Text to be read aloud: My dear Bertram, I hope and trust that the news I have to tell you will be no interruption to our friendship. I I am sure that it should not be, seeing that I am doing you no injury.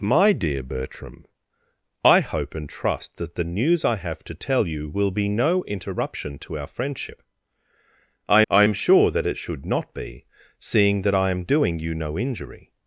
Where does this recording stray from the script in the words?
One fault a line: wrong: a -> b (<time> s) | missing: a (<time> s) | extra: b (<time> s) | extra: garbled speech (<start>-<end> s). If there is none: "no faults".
no faults